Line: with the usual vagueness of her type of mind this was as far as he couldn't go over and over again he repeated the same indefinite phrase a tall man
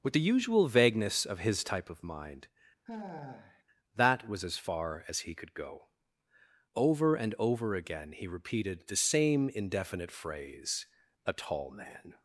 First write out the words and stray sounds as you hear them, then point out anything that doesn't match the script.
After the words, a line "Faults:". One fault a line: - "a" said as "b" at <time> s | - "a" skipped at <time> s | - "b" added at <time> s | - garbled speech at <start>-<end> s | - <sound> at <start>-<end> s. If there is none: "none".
with the usual vagueness of his type of mind that was as far as he could go over and over again he repeated the same indefinite phrase a tall man
Faults:
- "her" said as "his" at 1.4 s
- sigh at 2.9-3.6 s
- "this" said as "that" at 4.0 s
- "couldn't" said as "could" at 5.3 s